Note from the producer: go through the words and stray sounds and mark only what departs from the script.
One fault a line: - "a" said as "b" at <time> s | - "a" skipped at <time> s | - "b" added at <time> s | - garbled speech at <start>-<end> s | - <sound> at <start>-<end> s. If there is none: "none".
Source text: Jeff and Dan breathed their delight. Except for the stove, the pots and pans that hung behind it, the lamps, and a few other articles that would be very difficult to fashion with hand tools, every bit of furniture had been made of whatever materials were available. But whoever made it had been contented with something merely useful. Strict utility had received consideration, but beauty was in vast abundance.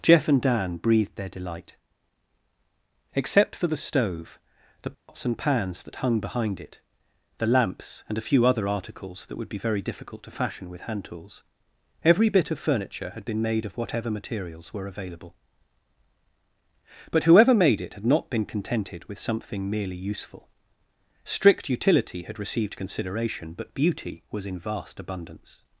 - dropout at 4.9-5.1 s
- "not" added at 18.1 s